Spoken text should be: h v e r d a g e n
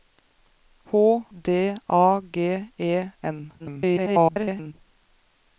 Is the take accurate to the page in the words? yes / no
no